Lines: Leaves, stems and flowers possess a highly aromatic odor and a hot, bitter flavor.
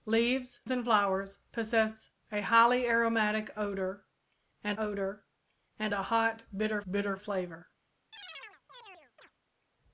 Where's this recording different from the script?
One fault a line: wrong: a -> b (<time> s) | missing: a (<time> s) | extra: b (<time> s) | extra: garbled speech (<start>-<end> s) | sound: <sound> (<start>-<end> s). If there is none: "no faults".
missing: stems (0.6 s)
extra: odor and (4.8 s)
extra: bitter (6.9 s)
sound: chirp (8.1-9.3 s)